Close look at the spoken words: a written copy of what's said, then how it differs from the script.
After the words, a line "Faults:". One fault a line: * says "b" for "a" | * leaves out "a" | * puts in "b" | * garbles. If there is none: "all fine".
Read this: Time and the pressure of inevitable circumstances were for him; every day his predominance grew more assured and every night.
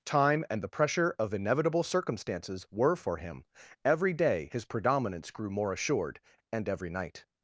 Time and the pressure of inevitable circumstances were for him; every day his predominance grew more assured and every night.
Faults:
all fine